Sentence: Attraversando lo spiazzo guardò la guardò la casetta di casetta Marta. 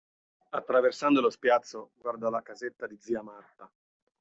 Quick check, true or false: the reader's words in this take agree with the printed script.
false